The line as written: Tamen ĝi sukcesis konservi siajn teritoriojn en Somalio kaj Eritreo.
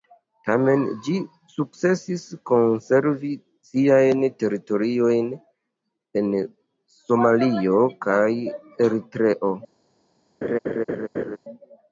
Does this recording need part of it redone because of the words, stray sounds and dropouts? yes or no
yes